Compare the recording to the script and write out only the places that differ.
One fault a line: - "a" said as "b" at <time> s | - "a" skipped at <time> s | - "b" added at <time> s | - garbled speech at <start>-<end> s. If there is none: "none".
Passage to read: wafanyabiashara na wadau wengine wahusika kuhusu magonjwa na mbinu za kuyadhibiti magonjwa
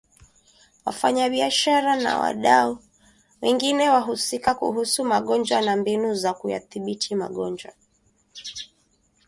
none